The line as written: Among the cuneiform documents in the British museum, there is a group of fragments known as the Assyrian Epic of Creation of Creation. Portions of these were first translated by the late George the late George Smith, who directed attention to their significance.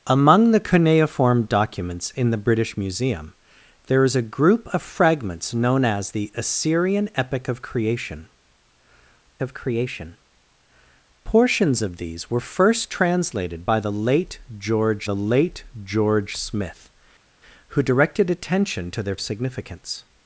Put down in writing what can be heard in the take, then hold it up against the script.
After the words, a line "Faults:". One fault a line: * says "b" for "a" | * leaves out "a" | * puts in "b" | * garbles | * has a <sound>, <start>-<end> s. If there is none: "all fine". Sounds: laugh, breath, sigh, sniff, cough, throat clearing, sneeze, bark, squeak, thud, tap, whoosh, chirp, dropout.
Among the cuneiform documents in the British museum, there is a group of fragments known as the Assyrian Epic of Creation of Creation. Portions of these were first translated by the late George the late George Smith, who directed attention to their significance.
Faults:
all fine